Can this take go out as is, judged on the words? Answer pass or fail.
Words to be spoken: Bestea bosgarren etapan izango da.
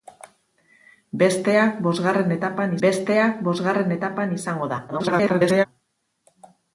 fail